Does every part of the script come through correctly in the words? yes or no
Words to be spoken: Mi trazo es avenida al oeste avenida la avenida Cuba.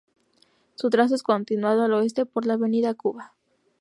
no